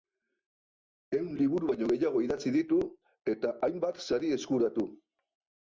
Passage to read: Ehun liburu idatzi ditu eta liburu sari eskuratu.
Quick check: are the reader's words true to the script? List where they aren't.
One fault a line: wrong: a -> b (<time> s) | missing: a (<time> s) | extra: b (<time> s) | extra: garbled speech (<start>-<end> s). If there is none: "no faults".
extra: baino gehiago (1.7 s)
wrong: liburu -> hainbat (3.7 s)